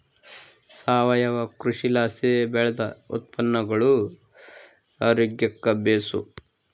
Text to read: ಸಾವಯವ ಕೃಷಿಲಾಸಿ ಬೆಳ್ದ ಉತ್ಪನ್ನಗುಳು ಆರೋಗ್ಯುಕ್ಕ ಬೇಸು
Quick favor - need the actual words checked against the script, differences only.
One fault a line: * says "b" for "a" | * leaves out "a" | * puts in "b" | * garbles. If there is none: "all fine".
all fine